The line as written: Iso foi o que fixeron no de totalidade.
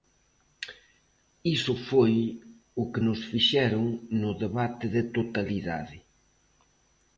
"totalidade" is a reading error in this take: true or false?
false